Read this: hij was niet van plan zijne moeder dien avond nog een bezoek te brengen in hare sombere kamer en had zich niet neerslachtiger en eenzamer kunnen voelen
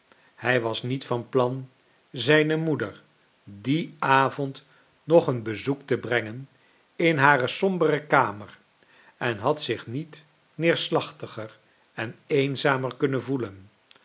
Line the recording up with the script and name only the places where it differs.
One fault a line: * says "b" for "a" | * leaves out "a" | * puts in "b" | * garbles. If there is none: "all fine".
all fine